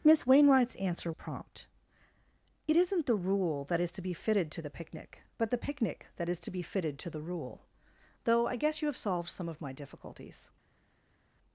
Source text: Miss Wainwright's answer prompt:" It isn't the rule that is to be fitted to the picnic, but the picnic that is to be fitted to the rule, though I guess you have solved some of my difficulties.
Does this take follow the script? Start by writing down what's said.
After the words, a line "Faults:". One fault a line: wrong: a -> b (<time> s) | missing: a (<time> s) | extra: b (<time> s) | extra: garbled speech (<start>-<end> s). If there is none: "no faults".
Miss Wainwright's answer prompt:" It isn't the rule that is to be fitted to the picnic, but the picnic that is to be fitted to the rule, though I guess you have solved some of my difficulties.
Faults:
no faults